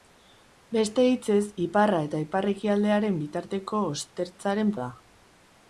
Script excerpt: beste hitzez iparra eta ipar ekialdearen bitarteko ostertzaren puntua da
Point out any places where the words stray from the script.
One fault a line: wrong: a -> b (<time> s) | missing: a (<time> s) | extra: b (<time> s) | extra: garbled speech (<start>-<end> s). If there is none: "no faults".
missing: puntua (4.7 s)